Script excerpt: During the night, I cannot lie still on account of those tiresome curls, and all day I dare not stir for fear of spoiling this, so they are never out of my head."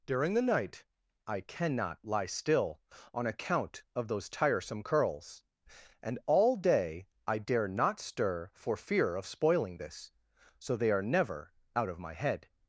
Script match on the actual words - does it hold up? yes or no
yes